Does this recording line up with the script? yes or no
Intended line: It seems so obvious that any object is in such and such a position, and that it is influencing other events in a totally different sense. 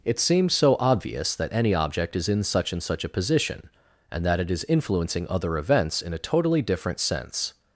yes